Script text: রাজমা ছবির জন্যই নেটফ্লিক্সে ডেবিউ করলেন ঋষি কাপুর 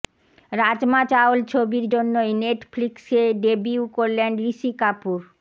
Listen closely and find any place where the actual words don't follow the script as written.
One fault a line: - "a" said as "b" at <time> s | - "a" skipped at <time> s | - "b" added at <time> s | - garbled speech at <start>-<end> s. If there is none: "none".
- "চাওল" added at 1.1 s